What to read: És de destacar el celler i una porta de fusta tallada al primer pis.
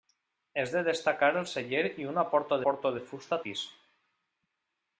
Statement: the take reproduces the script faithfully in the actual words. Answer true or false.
false